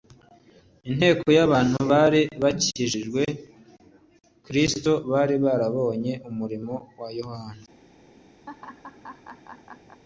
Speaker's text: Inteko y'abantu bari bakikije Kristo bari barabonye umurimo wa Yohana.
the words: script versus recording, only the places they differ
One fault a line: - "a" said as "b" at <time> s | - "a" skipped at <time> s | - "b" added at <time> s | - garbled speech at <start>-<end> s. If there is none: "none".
none